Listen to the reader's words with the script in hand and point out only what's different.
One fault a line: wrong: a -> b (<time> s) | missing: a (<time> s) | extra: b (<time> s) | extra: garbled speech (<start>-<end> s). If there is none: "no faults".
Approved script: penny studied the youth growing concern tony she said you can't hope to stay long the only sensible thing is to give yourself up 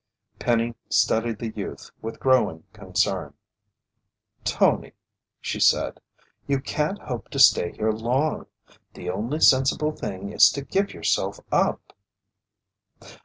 extra: with (2.0 s)
extra: here (7.7 s)